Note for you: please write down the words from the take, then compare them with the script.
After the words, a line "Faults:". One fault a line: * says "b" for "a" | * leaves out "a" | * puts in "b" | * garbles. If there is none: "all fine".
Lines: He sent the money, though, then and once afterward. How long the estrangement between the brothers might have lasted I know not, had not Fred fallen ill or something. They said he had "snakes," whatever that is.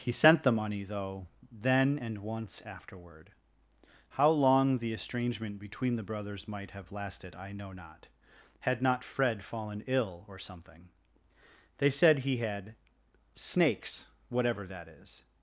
He sent the money, though, then and once afterward. How long the estrangement between the brothers might have lasted I know not, had not Fred fallen ill or something. They said he had "snakes," whatever that is.
Faults:
all fine